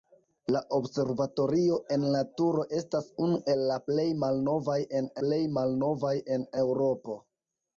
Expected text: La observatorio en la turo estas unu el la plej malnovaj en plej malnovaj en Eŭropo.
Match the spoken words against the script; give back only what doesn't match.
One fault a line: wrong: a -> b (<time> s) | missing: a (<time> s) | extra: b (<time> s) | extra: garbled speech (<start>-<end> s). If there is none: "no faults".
no faults